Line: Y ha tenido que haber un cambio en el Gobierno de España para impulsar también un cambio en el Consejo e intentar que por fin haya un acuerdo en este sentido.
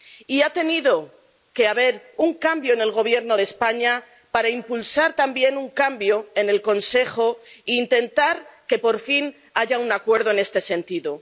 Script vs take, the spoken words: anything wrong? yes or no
no